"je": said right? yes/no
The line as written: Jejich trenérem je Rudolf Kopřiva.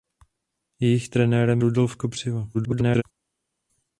no